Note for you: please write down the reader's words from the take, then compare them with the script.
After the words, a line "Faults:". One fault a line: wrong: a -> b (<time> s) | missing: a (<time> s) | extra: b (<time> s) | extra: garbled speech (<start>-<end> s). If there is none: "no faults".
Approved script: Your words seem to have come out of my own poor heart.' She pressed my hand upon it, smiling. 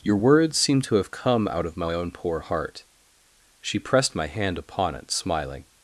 Your words seem to have come out of my own poor heart.' She pressed my hand upon it, smiling.
Faults:
no faults